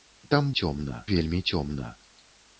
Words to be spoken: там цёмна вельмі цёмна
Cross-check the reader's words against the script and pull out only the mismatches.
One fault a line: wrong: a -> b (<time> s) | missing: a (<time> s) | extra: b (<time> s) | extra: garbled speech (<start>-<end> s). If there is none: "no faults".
no faults